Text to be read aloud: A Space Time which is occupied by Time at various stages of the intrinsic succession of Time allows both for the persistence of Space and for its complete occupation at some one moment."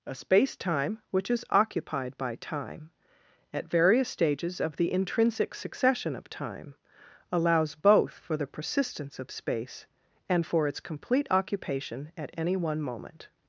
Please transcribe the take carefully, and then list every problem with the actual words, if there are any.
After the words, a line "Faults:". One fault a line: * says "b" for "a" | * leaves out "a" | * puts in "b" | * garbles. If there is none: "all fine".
A Space Time which is occupied by Time at various stages of the intrinsic succession of Time allows both for the persistence of Space and for its complete occupation at any one moment."
Faults:
* says "any" for "some"